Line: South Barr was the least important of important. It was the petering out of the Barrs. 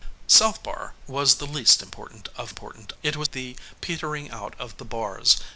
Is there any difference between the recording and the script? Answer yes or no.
no